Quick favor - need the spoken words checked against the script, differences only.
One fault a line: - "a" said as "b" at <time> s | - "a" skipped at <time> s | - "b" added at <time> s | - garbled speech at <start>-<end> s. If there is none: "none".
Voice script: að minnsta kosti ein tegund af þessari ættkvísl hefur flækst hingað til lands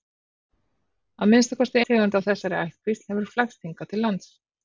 - "ein" skipped at 1.8 s